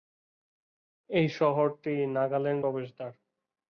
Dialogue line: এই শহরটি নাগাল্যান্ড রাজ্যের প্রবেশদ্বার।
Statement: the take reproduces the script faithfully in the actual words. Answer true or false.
false